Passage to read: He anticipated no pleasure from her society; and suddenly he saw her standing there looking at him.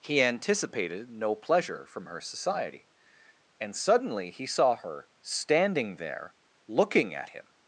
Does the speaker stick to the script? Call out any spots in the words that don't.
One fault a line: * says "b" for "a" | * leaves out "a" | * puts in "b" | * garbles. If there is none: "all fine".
all fine